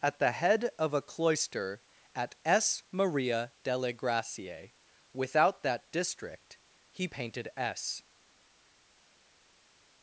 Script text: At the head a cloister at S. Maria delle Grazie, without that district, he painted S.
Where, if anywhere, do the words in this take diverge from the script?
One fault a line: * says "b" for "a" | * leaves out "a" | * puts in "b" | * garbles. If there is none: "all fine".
* puts in "of"